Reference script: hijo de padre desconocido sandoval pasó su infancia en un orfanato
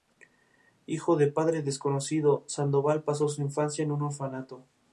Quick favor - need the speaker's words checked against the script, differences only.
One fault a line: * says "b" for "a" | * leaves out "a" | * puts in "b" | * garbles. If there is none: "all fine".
all fine